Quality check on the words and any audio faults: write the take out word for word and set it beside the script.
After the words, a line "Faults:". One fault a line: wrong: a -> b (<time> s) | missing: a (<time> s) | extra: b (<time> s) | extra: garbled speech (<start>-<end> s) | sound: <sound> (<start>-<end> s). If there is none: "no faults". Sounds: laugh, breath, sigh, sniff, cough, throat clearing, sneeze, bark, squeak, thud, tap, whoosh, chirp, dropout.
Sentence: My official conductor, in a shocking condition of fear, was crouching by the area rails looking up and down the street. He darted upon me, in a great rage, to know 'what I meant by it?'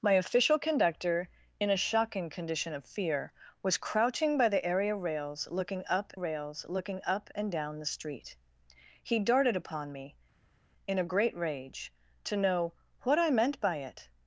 My official conductor, in a shocking condition of fear, was crouching by the area rails looking up rails looking up and down the street. He darted upon me, in a great rage, to know 'what I meant by it?'
Faults:
extra: rails looking up (6.1 s)